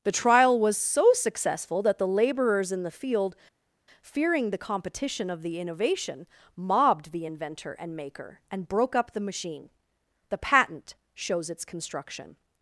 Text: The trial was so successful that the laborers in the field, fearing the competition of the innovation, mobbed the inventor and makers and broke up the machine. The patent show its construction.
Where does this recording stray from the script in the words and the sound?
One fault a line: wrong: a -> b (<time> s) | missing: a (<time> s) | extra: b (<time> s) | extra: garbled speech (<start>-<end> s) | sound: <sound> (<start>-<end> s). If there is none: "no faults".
wrong: makers -> maker (8.0 s)
wrong: show -> shows (11.1 s)